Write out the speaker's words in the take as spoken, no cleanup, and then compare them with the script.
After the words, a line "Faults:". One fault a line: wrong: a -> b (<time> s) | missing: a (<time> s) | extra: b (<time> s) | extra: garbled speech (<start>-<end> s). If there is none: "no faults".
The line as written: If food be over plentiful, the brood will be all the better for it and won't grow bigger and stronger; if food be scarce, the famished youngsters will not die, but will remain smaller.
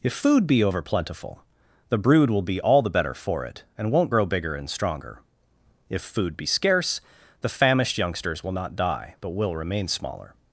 If food be over plentiful, the brood will be all the better for it and won't grow bigger and stronger; if food be scarce, the famished youngsters will not die, but will remain smaller.
Faults:
no faults